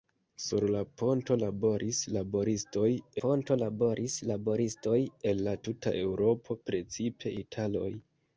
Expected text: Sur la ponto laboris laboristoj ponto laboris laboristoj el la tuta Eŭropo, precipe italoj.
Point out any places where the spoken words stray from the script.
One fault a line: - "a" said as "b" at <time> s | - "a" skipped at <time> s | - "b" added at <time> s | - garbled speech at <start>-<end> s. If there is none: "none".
none